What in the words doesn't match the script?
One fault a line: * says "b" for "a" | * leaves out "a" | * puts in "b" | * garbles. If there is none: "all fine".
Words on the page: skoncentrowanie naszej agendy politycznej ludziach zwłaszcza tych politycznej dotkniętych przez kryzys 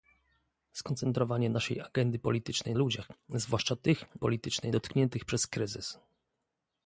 all fine